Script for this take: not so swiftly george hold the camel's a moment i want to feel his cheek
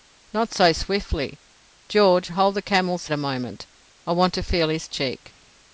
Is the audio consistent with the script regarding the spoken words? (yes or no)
yes